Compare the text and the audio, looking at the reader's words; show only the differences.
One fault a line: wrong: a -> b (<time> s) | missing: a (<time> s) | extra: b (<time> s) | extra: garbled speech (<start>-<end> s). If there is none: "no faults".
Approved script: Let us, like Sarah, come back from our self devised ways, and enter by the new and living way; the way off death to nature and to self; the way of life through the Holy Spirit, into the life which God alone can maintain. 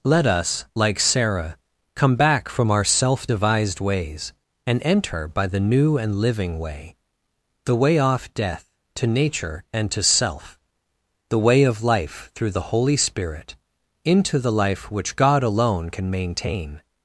no faults